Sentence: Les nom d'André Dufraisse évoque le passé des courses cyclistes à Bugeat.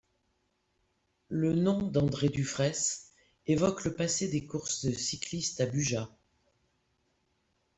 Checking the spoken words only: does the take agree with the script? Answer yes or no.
no